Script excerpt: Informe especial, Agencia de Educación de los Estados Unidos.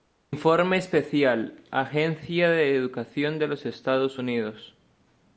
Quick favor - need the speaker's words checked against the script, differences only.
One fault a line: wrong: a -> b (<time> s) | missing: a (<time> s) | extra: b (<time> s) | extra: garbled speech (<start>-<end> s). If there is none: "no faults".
no faults